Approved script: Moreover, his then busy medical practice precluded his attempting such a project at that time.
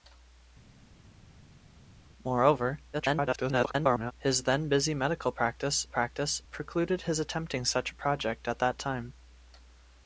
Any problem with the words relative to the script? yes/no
yes